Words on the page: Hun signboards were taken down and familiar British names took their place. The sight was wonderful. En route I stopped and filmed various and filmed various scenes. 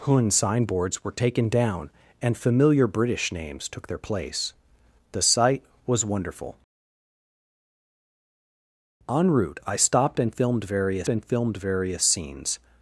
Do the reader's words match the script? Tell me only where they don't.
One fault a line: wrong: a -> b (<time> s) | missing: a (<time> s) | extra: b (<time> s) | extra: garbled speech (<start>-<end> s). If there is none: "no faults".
no faults